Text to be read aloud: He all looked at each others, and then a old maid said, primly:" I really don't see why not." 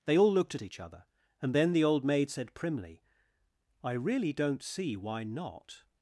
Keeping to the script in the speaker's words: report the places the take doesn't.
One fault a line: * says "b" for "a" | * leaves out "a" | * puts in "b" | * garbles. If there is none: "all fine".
* says "They" for "He"
* says "other" for "others"
* says "the" for "a"